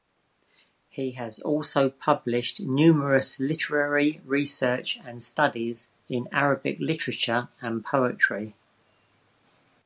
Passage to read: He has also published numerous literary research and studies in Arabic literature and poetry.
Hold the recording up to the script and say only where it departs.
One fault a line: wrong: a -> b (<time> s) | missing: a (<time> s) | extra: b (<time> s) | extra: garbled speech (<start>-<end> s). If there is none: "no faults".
no faults